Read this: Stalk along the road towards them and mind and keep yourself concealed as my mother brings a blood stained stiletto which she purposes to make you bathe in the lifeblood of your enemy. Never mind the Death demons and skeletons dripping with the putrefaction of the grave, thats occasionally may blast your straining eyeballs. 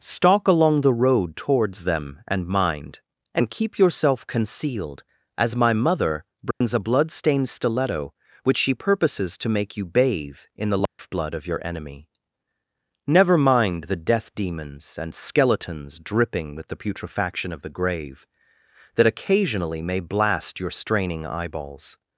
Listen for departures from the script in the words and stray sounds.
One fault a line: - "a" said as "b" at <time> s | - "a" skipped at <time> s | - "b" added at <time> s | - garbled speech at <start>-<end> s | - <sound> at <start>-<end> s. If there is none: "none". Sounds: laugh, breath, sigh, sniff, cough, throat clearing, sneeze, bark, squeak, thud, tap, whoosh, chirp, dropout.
- dropout at 6.5-6.6 s
- dropout at 10.9-11.0 s
- "thats" said as "that" at 18.9 s